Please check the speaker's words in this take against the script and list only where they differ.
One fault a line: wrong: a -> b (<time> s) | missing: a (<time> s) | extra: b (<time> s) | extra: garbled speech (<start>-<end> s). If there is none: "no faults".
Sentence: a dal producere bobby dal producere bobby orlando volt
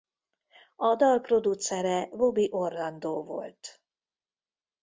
missing: dal producere bobby (2.5 s)